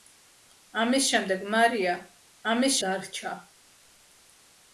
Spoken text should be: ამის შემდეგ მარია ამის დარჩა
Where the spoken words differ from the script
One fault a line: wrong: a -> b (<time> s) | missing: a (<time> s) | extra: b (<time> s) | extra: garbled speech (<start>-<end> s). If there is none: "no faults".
no faults